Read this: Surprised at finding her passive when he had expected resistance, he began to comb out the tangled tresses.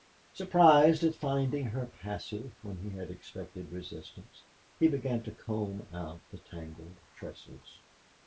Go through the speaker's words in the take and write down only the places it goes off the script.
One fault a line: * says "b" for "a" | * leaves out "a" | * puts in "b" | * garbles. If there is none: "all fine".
all fine